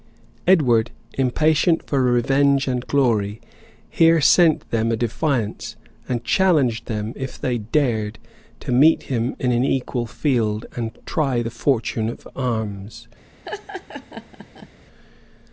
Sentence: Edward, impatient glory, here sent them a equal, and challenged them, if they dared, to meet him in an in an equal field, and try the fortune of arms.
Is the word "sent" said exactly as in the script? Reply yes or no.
yes